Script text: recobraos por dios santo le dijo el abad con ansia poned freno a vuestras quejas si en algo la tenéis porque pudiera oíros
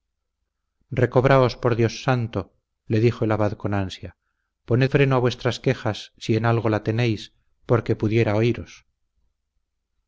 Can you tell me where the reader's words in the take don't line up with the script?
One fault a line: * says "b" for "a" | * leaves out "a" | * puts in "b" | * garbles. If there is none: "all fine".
all fine